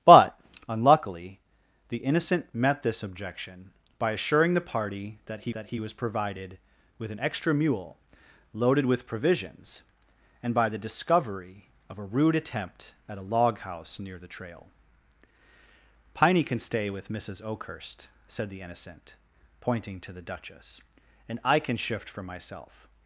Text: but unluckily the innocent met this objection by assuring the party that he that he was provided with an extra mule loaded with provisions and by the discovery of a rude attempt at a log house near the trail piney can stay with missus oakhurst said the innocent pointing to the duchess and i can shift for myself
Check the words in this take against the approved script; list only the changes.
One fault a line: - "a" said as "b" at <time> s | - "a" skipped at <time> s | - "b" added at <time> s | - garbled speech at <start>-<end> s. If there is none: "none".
none